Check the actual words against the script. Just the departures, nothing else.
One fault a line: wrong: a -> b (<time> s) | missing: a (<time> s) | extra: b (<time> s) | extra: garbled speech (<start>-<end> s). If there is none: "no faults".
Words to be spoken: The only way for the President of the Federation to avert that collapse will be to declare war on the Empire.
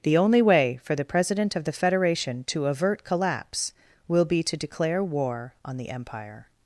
missing: that (3.0 s)